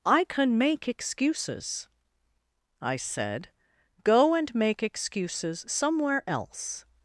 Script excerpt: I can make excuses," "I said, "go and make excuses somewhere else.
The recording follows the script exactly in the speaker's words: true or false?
true